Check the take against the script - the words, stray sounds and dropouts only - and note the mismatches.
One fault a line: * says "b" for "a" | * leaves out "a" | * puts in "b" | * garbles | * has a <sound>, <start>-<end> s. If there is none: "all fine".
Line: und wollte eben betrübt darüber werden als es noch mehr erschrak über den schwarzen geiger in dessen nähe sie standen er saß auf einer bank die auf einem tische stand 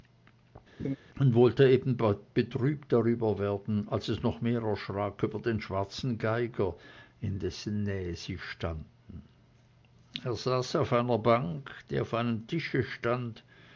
* has a laugh, 0.8-1.0 s